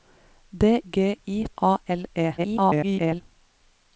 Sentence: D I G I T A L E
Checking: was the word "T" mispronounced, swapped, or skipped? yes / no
yes